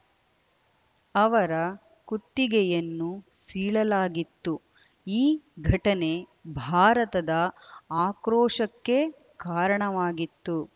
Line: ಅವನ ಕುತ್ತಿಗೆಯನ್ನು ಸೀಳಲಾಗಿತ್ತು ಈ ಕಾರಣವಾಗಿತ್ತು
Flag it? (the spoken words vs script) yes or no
yes